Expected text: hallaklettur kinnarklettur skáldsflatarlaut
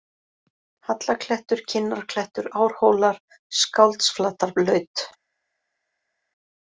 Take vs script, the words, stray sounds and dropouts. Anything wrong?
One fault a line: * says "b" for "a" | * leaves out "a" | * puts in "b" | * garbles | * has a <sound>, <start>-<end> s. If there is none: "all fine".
* puts in "árhólar"